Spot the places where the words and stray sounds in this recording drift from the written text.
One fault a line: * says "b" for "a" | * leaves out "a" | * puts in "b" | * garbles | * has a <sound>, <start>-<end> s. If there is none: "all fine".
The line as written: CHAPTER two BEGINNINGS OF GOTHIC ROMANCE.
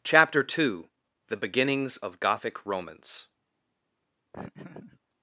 * puts in "THE"
* has a laugh, 4.3-5.0 s